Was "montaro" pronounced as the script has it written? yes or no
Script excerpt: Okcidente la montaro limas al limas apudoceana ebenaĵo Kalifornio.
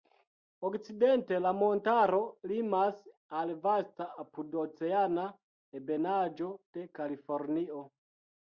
yes